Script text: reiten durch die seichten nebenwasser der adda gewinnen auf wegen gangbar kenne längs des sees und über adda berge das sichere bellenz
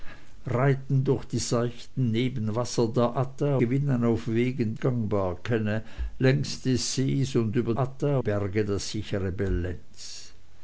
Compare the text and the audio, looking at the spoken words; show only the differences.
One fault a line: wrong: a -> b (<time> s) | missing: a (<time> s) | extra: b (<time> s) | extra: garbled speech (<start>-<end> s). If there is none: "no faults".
no faults